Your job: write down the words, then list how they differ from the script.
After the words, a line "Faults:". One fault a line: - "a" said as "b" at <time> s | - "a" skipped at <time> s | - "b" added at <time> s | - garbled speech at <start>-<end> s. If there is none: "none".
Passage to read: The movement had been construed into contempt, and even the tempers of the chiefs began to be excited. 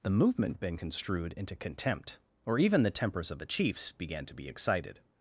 The movement been construed into contempt, or even the tempers of the chiefs began to be excited.
Faults:
- "had" skipped at 0.6 s
- "and" said as "or" at 2.4 s